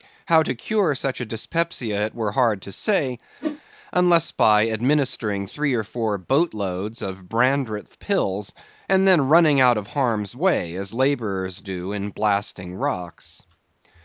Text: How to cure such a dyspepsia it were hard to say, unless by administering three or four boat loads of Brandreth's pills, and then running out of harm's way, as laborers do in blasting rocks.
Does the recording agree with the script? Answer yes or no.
yes